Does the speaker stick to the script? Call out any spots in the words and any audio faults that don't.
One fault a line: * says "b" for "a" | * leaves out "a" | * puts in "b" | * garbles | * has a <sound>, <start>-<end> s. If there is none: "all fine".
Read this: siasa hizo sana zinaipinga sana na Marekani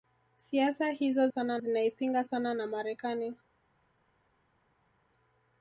all fine